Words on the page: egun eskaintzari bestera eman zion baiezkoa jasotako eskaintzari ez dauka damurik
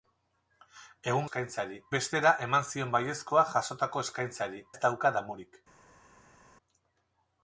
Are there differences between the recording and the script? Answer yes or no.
no